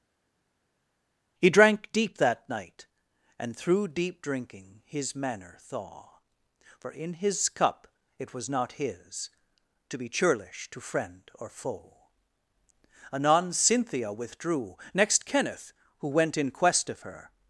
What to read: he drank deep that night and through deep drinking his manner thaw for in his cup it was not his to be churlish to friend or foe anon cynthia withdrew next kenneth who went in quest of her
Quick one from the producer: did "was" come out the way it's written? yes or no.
yes